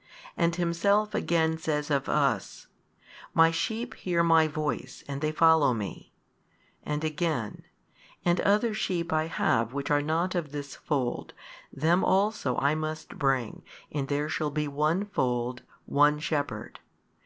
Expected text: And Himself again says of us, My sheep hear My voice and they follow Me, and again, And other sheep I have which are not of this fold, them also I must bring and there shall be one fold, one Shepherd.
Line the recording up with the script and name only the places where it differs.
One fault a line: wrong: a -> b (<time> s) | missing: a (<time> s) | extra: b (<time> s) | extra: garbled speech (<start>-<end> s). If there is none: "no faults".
no faults